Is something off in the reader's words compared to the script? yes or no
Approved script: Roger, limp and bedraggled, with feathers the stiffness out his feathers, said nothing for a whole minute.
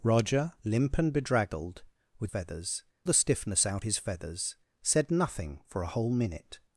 no